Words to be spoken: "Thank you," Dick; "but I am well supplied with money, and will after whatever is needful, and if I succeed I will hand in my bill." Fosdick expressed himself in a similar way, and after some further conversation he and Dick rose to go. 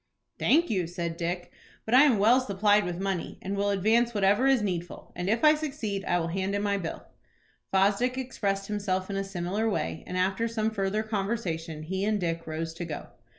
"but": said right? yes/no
yes